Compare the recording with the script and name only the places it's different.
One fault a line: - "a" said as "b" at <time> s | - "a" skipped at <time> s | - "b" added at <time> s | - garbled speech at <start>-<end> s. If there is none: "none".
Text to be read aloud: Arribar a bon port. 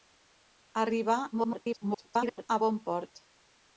- garbled speech at 1.3-2.5 s